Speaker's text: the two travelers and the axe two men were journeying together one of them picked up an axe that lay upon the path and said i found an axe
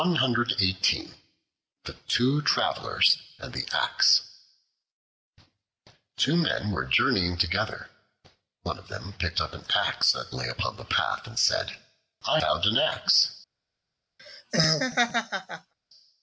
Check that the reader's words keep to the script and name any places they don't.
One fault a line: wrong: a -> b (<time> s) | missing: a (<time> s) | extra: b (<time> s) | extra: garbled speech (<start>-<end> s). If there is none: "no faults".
no faults